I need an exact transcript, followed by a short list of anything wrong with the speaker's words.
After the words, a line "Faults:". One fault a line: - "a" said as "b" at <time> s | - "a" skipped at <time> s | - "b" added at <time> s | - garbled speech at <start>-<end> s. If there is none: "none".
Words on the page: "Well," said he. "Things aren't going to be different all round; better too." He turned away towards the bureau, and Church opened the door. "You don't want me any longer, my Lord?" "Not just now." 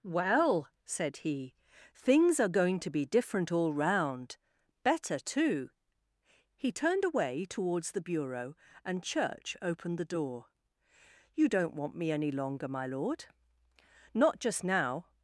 "Well," said he. "Things are going to be different all round; better too." He turned away towards the bureau, and Church opened the door. "You don't want me any longer, my Lord?" "Not just now."
Faults:
- "aren't" said as "are" at 2.4 s